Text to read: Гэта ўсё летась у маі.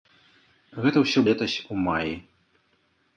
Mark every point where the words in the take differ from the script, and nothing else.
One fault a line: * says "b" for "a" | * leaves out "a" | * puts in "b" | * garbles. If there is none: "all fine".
all fine